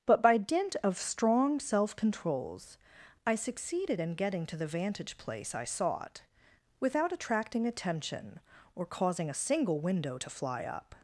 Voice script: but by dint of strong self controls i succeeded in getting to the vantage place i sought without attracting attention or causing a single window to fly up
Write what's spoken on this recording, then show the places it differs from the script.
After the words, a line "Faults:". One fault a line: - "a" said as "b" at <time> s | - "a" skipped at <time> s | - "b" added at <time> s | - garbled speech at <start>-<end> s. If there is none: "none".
but by dint of strong self controls i succeeded in getting to the vantage place i sought without attracting attention or causing a single window to fly up
Faults:
none